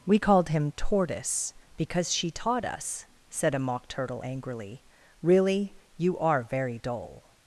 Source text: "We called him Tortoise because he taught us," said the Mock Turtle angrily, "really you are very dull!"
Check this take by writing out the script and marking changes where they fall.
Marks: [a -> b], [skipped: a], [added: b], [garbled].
"We called him Tortoise because [he -> she] taught us," said [the -> a] Mock Turtle angrily, "really you are very dull!"